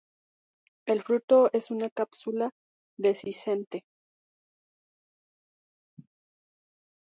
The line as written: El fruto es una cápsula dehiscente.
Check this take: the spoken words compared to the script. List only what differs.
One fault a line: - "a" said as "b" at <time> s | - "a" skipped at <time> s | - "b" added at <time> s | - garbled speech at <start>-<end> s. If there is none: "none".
none